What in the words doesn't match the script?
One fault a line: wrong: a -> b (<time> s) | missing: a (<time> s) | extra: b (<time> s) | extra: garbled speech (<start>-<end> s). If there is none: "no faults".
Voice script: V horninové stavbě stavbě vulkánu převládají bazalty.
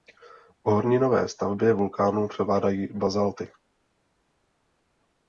missing: stavbě (1.7 s)